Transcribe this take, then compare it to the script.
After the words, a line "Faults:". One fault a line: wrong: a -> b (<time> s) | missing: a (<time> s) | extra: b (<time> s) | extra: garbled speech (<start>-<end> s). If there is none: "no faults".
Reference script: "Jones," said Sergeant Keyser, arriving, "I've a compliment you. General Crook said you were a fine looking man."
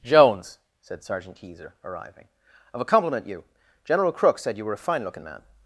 "Jones," said Sergeant Keyser, arriving, "I've a compliment you. General Crook said you were a fine looking man."
Faults:
no faults